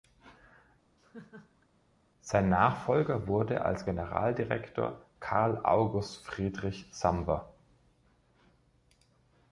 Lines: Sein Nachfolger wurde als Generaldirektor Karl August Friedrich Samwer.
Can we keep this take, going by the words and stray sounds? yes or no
no